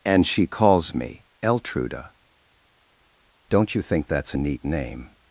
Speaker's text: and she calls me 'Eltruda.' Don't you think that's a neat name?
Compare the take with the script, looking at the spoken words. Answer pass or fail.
pass